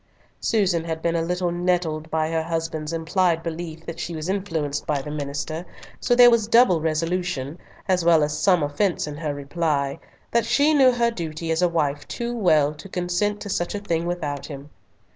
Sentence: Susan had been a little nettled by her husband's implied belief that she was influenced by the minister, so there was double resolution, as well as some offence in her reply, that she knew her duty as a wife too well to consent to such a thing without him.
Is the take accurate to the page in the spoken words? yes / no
yes